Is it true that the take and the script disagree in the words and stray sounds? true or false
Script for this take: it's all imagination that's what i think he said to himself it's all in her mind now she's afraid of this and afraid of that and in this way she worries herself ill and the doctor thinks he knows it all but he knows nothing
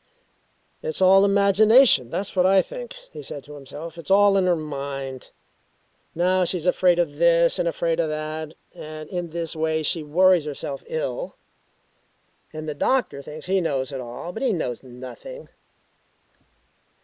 false